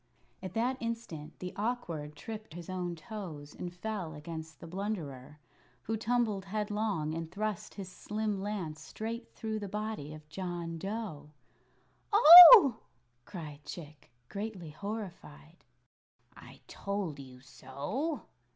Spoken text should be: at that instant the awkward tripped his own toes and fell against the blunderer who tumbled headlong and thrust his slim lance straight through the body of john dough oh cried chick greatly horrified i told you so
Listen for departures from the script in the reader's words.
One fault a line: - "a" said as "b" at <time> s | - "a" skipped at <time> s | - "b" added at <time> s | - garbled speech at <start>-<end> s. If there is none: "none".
none